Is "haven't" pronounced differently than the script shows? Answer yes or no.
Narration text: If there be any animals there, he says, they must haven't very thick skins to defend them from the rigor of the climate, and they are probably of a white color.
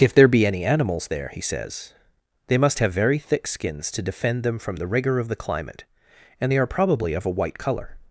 yes